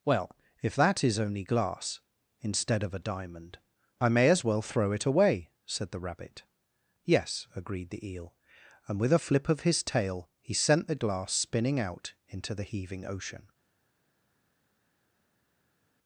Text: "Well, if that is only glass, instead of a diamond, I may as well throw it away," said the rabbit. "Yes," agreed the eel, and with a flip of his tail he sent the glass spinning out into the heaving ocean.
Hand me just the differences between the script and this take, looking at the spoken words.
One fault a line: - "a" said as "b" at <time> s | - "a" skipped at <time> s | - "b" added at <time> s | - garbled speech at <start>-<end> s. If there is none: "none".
none